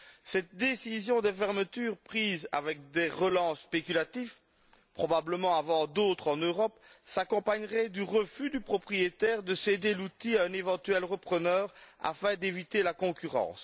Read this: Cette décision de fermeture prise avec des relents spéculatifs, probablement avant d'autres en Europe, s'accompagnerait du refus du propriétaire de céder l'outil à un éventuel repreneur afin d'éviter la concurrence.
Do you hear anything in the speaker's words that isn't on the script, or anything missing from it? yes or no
no